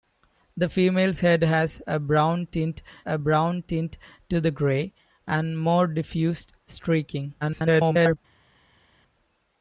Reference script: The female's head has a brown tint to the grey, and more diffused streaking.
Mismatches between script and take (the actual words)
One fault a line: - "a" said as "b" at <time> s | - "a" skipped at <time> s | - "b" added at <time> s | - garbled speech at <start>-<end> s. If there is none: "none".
- "a brown tint" added at 3.0 s
- garbled speech at 7.4-8.2 s